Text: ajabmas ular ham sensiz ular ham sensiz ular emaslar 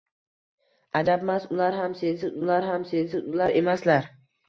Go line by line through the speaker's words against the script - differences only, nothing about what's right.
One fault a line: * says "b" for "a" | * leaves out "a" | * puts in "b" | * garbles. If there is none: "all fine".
all fine